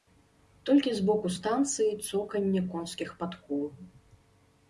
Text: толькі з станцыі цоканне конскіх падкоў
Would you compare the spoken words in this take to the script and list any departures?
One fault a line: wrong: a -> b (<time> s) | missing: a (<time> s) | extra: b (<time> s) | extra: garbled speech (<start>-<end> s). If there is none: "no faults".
extra: боку (1.1 s)